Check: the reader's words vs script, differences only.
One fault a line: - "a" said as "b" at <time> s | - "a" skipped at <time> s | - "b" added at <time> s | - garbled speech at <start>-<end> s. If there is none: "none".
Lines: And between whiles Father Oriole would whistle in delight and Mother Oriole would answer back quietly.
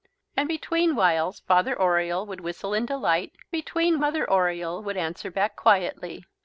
- "and" said as "between" at 3.5 s